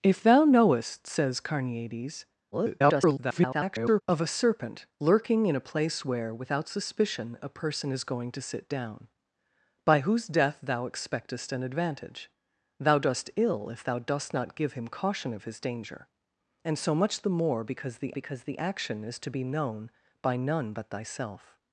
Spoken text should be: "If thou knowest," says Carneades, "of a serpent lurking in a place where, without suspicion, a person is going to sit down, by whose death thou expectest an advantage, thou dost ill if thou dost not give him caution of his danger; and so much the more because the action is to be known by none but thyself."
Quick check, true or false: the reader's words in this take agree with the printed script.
false